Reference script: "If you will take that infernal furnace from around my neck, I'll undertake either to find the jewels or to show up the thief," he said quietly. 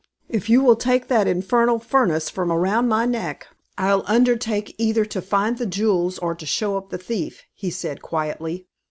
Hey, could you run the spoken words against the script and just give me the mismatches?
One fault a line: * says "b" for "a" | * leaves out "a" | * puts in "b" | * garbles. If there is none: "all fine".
all fine